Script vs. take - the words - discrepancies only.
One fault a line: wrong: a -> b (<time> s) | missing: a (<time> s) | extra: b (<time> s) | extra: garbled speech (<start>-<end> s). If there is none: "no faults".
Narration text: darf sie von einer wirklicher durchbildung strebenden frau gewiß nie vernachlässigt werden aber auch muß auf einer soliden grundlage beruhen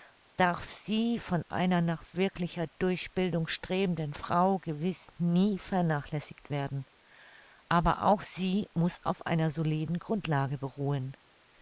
extra: nach (1.8 s)
extra: sie (8.2 s)